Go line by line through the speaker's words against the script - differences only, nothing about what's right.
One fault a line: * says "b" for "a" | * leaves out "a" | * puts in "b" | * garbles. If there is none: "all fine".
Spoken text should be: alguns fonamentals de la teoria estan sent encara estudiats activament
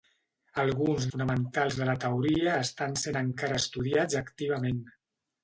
all fine